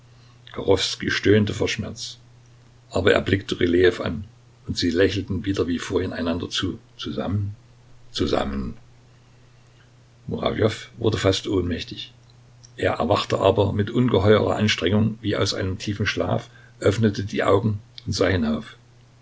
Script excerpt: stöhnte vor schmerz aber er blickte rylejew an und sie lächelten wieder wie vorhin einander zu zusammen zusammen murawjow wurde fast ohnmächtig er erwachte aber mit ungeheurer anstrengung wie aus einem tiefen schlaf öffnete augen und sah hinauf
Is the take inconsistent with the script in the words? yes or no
yes